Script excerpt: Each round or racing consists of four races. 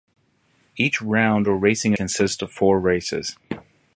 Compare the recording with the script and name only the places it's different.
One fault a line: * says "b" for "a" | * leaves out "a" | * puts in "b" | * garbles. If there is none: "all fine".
all fine